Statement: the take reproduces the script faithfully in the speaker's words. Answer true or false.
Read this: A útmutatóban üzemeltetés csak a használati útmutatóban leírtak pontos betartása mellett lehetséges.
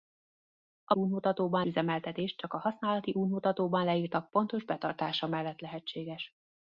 true